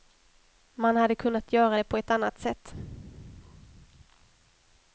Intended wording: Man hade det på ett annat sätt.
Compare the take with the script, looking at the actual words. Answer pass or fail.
fail